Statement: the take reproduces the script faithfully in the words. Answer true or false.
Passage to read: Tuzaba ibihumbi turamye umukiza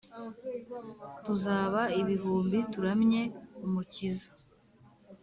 true